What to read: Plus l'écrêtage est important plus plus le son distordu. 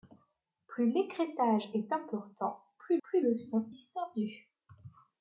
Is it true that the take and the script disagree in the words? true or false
false